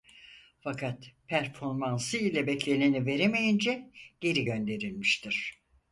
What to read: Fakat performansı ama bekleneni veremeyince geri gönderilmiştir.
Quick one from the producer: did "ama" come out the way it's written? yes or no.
no